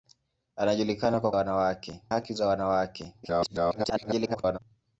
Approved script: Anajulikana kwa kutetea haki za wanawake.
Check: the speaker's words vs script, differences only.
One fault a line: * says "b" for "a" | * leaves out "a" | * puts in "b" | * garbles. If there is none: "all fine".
* says "wanawake" for "kutetea"
* garbles